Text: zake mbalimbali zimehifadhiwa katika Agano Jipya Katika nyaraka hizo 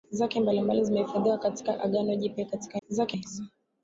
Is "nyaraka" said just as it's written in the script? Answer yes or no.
no